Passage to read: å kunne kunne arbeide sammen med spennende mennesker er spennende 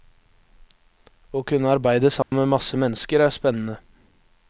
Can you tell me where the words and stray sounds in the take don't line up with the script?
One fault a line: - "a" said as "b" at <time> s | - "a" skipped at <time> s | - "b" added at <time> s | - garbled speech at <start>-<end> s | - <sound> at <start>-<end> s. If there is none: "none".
- "kunne" skipped at 1.7 s
- dropout at 2.2-2.3 s
- "spennende" said as "masse" at 2.5 s